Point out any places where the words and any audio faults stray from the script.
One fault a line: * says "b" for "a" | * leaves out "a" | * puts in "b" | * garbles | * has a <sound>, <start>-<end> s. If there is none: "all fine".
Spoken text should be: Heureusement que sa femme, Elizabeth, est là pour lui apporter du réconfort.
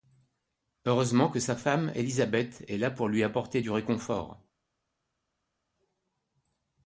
all fine